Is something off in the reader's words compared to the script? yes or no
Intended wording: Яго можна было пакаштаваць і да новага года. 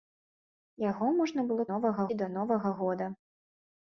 yes